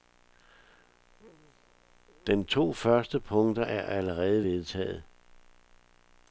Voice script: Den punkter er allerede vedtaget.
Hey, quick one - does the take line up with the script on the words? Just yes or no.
no